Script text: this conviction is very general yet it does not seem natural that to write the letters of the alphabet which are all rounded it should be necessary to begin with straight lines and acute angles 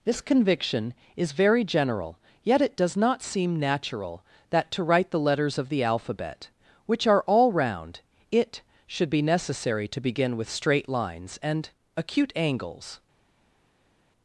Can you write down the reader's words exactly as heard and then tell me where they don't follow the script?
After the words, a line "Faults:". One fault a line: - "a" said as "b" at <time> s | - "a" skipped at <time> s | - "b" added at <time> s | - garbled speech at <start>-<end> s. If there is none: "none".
this conviction is very general yet it does not seem natural that to write the letters of the alphabet which are all round it should be necessary to begin with straight lines and acute angles
Faults:
- "rounded" said as "round" at 7.5 s